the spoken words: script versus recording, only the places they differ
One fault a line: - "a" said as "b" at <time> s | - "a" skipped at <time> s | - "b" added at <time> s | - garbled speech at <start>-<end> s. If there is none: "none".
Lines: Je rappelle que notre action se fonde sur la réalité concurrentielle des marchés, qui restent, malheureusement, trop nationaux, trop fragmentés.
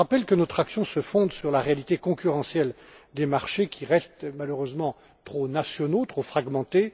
none